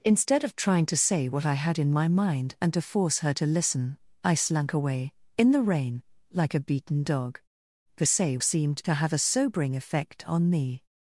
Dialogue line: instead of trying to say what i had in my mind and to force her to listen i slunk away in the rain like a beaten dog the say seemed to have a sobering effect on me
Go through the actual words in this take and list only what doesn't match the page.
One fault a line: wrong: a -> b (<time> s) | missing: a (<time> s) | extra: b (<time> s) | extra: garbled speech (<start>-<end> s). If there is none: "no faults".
no faults